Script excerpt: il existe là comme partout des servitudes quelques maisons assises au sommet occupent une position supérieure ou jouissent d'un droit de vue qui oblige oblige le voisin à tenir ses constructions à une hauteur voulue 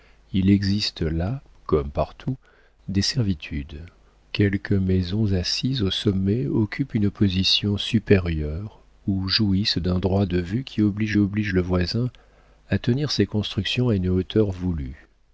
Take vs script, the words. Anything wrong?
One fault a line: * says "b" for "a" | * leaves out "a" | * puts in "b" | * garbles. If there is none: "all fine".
all fine